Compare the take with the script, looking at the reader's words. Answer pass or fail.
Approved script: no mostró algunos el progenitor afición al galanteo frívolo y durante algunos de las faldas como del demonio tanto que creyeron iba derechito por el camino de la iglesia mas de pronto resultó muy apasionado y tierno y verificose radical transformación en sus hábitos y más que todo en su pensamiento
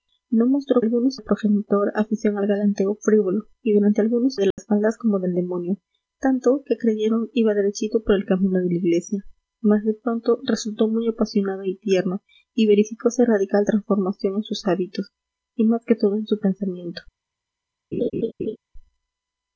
pass